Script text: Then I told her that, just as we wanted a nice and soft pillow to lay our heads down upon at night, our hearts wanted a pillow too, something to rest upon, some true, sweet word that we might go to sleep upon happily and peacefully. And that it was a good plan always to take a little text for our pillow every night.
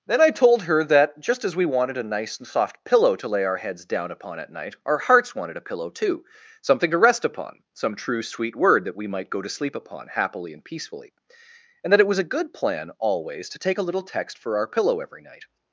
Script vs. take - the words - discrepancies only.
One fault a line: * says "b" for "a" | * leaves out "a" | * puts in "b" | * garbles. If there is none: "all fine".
all fine